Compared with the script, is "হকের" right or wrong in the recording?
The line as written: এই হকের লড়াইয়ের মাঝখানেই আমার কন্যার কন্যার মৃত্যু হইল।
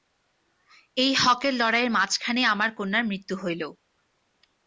right